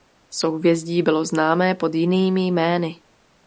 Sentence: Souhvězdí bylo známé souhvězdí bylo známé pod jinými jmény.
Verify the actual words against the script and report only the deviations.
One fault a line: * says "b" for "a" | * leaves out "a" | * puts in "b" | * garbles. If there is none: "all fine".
* leaves out "souhvězdí bylo známé"